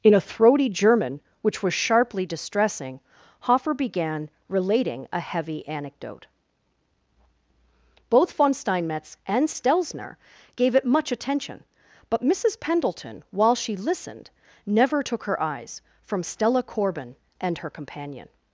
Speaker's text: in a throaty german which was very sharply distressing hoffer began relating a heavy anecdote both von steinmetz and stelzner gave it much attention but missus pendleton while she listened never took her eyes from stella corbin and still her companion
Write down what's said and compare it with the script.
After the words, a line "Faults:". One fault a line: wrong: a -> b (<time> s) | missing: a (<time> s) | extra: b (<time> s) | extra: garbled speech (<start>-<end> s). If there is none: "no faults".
in a throaty german which was sharply distressing hoffer began relating a heavy anecdote both von steinmetz and stelzner gave it much attention but missus pendleton while she listened never took her eyes from stella corbin and her companion
Faults:
missing: very (1.7 s)
missing: still (17.6 s)